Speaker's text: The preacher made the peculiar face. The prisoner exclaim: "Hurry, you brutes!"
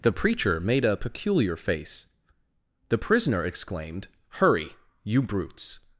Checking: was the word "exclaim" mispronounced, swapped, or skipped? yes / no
yes